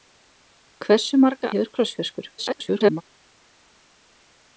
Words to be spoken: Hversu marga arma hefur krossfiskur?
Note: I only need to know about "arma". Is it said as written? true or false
false